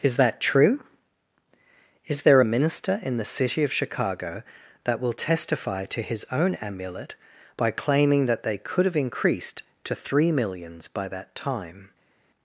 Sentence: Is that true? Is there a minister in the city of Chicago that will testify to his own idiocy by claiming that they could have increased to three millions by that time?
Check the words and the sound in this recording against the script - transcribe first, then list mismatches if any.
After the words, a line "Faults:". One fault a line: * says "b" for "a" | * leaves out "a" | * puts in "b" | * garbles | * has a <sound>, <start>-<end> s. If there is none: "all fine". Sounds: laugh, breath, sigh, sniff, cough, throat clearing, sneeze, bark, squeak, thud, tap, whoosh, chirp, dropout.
Is that true? Is there a minister in the city of Chicago that will testify to his own amulet by claiming that they could have increased to three millions by that time?
Faults:
* says "amulet" for "idiocy"